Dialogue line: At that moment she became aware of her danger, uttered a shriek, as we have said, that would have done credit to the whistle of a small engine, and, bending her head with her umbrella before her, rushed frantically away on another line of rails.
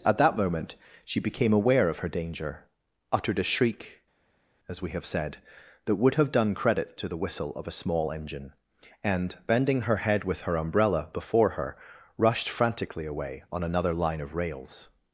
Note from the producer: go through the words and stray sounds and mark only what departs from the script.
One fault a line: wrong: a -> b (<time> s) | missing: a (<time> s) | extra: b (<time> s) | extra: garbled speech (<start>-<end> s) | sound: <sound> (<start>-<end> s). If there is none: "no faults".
no faults